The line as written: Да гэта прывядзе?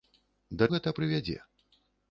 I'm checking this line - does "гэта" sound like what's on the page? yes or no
yes